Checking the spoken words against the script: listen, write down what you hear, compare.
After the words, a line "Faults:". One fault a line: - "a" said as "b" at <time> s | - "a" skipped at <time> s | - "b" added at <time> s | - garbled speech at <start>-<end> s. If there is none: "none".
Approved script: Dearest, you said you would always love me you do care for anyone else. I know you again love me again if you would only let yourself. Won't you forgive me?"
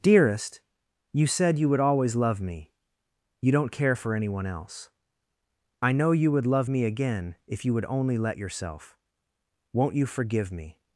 Dearest, you said you would always love me you don't care for anyone else. I know you would love me again if you would only let yourself. Won't you forgive me?"
Faults:
- "do" said as "don't" at 3.5 s
- "again" said as "would" at 6.3 s